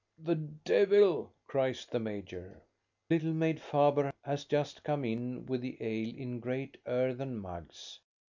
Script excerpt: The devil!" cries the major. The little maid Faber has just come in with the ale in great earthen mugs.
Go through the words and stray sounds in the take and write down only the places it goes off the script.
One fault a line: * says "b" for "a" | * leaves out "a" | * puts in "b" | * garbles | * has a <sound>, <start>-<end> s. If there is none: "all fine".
* leaves out "The"